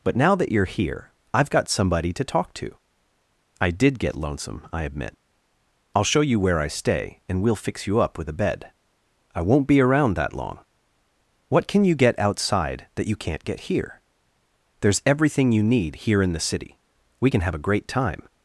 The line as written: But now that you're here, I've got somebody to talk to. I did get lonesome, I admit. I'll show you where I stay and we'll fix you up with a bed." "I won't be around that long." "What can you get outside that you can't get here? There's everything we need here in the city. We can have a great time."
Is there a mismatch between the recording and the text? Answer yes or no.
yes